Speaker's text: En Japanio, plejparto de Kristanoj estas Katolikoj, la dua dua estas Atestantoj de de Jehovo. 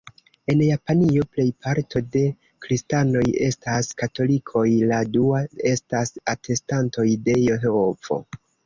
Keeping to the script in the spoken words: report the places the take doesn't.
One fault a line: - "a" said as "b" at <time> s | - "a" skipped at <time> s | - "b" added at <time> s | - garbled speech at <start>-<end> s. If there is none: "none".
- "dua" skipped at 5.4 s
- "de" skipped at 7.4 s